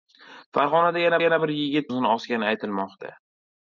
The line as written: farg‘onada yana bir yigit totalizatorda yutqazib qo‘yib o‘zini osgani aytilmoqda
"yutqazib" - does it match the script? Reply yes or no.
no